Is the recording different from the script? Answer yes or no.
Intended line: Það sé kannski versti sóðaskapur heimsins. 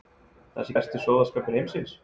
yes